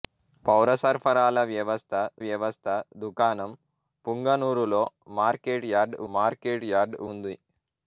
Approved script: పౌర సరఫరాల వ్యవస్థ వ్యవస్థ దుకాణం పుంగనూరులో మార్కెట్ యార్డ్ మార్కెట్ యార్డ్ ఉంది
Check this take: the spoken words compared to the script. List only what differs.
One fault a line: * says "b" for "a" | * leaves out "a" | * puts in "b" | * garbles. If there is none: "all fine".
all fine